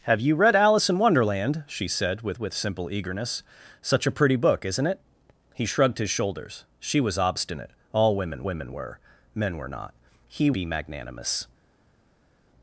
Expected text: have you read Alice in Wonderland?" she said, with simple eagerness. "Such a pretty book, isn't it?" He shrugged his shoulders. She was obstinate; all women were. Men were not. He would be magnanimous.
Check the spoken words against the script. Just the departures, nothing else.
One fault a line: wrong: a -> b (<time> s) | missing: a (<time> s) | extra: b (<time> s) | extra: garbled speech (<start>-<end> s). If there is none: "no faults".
extra: with (2.4 s)
extra: women (8.4 s)
missing: would (10.5 s)